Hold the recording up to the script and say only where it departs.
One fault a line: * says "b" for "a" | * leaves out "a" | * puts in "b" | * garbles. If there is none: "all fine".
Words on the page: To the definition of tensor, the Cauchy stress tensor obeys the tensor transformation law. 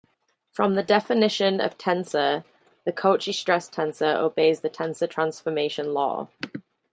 * says "From" for "To"